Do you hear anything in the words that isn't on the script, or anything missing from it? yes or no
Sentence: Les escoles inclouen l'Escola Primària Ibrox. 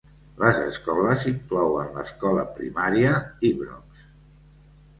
no